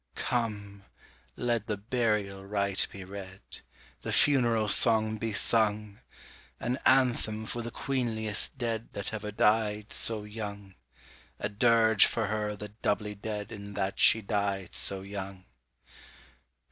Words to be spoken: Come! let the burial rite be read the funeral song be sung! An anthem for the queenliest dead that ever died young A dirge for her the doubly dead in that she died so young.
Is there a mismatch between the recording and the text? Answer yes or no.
yes